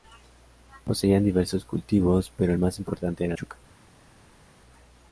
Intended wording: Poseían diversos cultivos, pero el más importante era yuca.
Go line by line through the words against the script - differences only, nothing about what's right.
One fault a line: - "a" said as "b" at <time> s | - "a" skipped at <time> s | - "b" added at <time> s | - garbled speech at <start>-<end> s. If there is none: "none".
none